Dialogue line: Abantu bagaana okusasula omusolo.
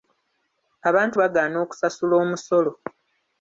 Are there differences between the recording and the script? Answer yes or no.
no